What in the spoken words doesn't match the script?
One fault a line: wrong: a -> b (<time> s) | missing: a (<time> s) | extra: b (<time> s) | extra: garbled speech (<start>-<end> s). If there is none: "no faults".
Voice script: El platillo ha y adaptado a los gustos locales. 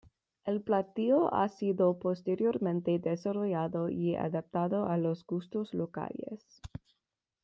extra: sido posteriormente desarrollado (1.5 s)